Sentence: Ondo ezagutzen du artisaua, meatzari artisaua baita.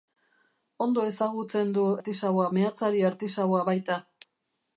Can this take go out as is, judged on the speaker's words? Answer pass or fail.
pass